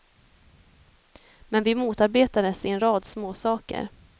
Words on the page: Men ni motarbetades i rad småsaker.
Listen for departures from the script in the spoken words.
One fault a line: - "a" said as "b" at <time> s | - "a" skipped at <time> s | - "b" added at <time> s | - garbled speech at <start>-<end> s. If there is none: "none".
- "ni" said as "vi" at 1.6 s
- "en" added at 2.7 s